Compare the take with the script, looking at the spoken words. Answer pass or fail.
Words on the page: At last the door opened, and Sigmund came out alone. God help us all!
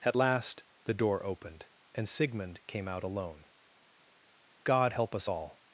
pass